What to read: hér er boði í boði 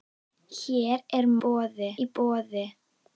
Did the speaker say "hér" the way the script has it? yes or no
yes